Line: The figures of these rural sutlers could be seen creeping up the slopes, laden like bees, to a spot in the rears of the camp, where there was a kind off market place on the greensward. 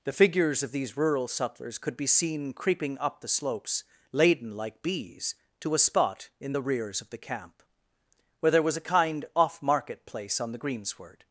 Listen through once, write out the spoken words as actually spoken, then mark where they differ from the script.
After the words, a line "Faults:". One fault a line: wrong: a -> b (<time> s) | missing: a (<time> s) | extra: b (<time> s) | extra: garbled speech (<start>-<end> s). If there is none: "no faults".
The figures of these rural sutlers could be seen creeping up the slopes, laden like bees, to a spot in the rears of the camp, where there was a kind off market place on the greensward.
Faults:
no faults